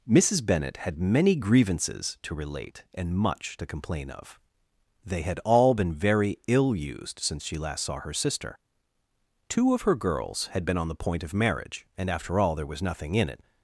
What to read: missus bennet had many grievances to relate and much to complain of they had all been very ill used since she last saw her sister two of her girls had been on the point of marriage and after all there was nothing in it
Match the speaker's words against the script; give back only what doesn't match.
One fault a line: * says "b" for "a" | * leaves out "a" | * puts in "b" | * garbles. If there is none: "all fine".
all fine